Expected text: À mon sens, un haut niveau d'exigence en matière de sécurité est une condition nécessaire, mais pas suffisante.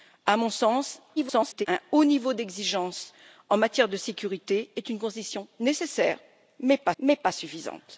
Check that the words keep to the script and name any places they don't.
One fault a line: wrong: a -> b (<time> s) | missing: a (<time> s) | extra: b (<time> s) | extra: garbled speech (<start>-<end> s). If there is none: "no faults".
extra: garbled speech (1.2-1.7 s)
extra: mais pas (7.0 s)